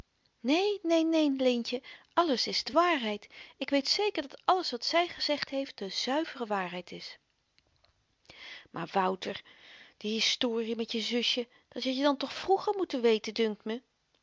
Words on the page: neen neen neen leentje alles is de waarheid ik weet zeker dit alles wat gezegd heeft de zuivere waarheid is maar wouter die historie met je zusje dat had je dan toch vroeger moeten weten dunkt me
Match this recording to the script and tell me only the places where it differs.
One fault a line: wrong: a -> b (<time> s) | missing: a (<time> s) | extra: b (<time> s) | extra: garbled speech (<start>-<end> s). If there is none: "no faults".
wrong: dit -> dat (4.2 s)
extra: zy (4.8 s)